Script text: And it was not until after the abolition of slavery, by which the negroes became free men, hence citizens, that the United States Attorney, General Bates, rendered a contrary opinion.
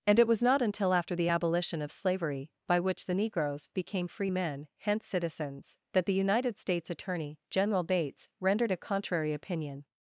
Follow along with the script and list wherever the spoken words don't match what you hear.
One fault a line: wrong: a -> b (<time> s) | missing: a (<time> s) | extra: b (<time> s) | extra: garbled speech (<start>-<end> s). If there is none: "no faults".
no faults